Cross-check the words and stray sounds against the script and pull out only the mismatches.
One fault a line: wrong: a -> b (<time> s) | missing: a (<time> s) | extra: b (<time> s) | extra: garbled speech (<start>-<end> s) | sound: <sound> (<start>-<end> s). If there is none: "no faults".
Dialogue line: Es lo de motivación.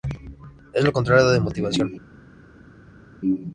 extra: contrario (0.9 s)